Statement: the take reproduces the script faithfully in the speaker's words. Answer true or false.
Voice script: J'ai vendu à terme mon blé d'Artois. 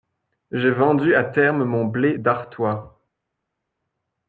true